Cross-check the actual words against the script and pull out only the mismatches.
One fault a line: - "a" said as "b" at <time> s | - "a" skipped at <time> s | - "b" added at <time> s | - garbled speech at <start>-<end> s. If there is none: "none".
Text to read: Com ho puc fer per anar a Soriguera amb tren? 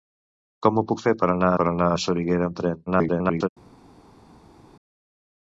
- "per anar" added at 1.6 s
- garbled speech at 2.9-3.5 s